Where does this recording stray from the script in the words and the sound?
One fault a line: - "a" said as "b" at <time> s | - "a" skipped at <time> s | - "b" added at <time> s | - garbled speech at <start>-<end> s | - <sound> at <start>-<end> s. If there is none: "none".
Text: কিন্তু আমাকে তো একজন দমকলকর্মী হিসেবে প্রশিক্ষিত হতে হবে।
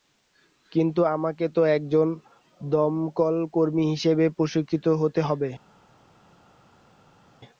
none